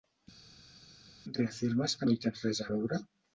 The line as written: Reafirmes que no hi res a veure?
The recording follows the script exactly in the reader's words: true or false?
false